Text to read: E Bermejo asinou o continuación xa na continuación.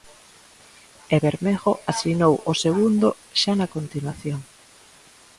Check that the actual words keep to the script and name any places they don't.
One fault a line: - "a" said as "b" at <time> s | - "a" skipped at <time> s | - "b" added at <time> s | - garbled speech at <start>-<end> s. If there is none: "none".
- "continuación" said as "segundo" at 2.6 s